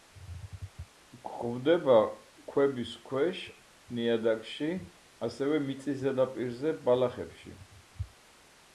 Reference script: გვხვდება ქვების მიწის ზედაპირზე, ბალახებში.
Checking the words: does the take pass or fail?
fail